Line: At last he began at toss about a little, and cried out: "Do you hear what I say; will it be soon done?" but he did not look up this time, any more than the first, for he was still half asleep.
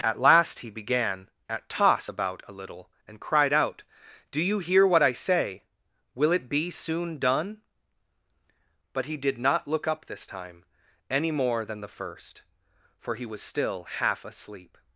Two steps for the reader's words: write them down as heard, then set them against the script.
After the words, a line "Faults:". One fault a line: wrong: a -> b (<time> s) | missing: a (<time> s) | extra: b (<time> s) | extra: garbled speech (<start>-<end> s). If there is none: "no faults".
At last he began at toss about a little, and cried out: "Do you hear what I say; will it be soon done?" but he did not look up this time, any more than the first, for he was still half asleep.
Faults:
no faults